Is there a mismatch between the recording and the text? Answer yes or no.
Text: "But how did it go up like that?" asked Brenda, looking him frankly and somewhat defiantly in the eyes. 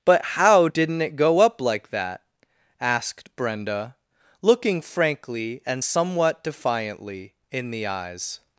yes